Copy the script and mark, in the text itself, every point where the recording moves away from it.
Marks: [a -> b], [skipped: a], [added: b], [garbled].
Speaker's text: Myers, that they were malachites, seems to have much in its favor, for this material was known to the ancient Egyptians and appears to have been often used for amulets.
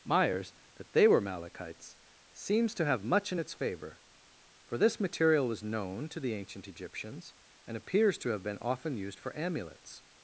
Myers, that they were malachites, seems to have much in its favor, for this material was known to the ancient Egyptians and appears to have been often used for amulets.